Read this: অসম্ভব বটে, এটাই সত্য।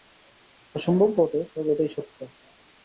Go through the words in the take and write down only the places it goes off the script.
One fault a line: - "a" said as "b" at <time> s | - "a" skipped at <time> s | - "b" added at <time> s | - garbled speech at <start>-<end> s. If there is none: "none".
- "তবে" added at 1.5 s